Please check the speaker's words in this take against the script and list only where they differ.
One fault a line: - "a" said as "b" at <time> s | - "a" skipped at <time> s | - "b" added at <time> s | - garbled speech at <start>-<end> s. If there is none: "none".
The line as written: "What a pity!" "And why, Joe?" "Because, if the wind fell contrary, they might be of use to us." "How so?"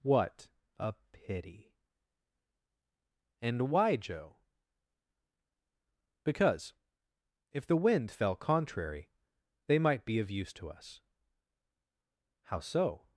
none